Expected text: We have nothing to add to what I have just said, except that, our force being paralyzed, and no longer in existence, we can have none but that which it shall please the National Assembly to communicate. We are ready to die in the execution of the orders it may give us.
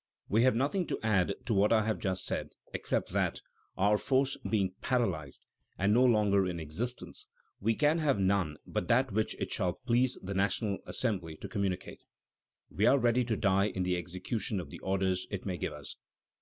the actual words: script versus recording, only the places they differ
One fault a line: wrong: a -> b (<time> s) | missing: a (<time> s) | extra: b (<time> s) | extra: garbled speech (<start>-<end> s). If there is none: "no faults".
no faults